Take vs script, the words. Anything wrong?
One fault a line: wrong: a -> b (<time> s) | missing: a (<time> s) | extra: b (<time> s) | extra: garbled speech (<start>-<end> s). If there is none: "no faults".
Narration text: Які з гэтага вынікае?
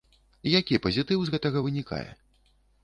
extra: пазітыў (0.8 s)